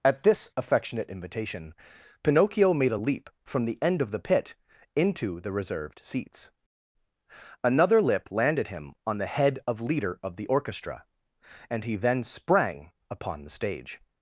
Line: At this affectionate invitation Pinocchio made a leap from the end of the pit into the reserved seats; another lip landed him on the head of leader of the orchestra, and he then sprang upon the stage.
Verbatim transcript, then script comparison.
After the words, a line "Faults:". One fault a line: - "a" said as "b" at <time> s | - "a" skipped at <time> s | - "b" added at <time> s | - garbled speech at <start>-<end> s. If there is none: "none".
At this affectionate invitation Pinocchio made a leap from the end of the pit into the reserved seats; another lip landed him on the head of leader of the orchestra, and he then sprang upon the stage.
Faults:
none